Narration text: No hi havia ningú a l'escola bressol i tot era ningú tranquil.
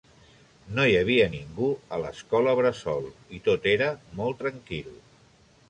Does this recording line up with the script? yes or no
no